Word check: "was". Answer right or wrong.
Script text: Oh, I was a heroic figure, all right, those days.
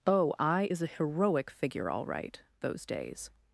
wrong